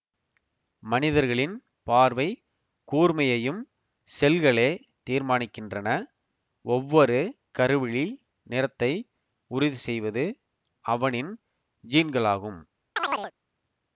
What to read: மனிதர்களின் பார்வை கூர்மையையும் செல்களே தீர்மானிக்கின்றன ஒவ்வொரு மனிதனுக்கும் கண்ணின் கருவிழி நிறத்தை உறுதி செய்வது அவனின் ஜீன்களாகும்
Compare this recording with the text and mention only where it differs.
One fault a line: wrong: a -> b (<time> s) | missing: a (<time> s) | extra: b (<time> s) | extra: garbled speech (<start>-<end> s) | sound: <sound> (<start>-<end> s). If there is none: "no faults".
missing: மனிதனுக்கும் கண்ணின் (7.2 s)
sound: chirp (13.0-13.3 s)